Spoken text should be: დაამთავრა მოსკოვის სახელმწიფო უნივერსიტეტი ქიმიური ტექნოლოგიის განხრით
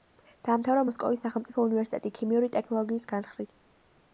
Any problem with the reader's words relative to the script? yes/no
no